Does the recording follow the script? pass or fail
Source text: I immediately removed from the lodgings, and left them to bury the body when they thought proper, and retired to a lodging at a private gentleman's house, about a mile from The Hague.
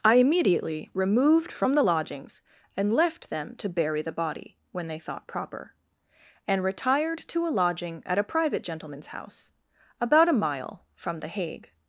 pass